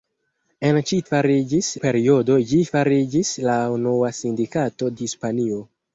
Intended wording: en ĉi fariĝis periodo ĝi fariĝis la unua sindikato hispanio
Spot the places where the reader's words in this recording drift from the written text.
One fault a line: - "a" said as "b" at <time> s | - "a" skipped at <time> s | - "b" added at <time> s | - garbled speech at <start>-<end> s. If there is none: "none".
none